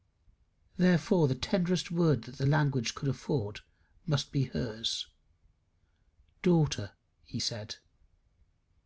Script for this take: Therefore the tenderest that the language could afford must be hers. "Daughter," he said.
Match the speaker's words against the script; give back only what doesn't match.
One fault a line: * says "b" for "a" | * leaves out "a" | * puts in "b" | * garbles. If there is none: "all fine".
* puts in "word"